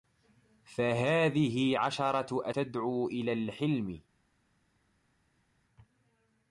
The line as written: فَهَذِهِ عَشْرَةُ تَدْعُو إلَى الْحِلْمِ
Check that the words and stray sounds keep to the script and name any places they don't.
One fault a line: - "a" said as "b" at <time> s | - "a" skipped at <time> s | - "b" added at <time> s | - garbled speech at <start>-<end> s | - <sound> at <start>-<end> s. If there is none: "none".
none